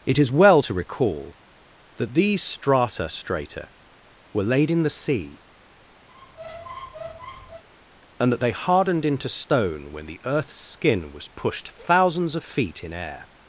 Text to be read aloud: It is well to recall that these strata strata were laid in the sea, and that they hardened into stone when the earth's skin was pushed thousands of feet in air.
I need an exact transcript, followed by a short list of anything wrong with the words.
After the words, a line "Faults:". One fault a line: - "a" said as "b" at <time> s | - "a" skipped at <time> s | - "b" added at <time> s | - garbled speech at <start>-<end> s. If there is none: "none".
It is well to recall that these strata strata were laid in the sea, and that they hardened into stone when the earth's skin was pushed thousands of feet in air.
Faults:
none